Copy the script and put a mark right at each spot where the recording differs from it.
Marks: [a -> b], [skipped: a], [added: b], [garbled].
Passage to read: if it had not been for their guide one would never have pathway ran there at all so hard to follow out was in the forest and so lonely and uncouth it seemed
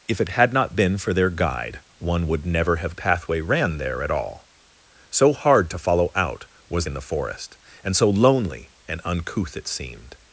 if it had not been for their guide one would never have pathway ran there at all so hard to follow out was in the forest and so lonely and uncouth it seemed